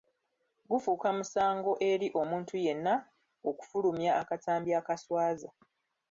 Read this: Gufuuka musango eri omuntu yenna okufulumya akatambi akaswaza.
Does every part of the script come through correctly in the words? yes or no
yes